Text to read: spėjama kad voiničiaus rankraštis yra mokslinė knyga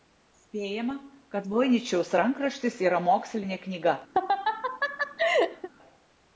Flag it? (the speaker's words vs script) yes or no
no